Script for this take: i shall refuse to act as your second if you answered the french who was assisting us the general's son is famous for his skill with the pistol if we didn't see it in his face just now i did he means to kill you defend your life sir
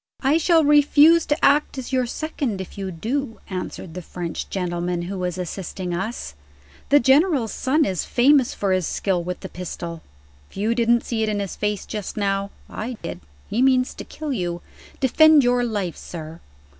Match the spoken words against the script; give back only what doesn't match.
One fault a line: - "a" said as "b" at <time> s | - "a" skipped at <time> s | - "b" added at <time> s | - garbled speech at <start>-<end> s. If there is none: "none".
- "do" added at 2.9 s
- "gentleman" added at 4.5 s
- "we" said as "you" at 10.5 s